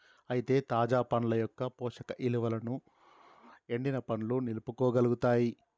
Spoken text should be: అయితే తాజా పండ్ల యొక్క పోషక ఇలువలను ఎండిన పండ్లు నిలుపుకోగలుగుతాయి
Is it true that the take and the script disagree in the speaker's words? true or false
false